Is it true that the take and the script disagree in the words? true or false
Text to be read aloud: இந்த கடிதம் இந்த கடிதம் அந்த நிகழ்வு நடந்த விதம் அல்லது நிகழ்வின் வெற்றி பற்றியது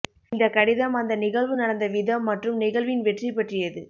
true